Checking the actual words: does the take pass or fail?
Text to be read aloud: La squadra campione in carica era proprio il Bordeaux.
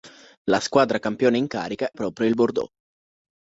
fail